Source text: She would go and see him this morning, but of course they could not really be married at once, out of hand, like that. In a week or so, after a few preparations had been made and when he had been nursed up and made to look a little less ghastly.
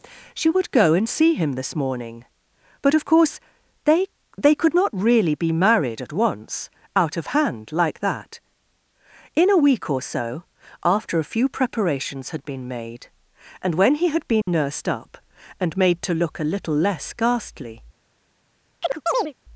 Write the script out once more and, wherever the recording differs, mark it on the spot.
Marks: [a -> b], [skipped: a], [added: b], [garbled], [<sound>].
She would go and see him this morning, but of course they [added: they] could not really be married at once, out of hand, like that. In a week or so, after a few preparations had been made and when he had been [dropout] nursed up and made to look a little less ghastly. [chirp]